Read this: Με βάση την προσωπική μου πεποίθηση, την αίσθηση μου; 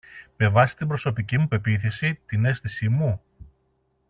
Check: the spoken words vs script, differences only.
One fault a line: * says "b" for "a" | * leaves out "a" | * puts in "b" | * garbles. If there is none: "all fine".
all fine